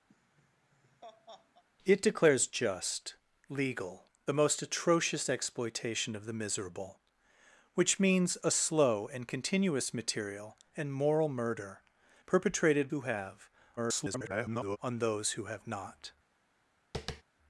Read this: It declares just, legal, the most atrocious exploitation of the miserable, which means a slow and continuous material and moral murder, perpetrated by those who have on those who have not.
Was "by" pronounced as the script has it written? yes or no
no